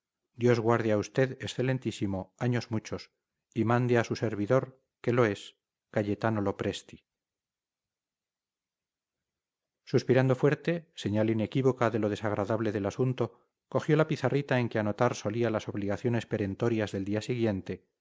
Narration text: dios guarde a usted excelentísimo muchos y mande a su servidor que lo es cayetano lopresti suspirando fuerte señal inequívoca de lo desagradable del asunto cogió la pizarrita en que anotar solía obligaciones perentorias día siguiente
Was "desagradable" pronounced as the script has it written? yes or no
yes